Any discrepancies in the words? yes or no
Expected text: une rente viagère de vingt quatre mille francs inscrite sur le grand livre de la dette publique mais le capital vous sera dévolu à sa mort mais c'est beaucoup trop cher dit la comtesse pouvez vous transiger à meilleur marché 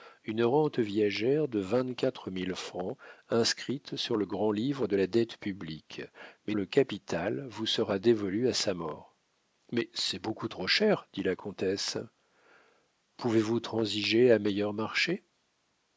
no